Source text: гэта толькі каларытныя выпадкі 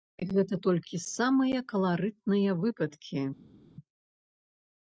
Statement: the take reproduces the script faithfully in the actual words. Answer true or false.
false